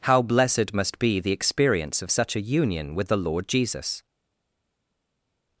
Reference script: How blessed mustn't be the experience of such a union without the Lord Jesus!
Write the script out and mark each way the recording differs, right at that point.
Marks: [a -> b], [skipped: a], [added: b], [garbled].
How blessed [mustn't -> must] be the experience of such a union [without -> with] the Lord Jesus!